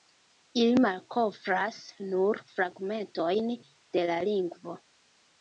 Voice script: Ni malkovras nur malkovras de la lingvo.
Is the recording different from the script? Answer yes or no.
yes